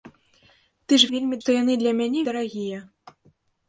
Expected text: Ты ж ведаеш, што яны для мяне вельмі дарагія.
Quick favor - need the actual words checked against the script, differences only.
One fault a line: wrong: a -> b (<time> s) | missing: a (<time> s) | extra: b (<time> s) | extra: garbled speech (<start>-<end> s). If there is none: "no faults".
wrong: ведаеш -> вельмі (1.2 s)
missing: вельмі (2.2 s)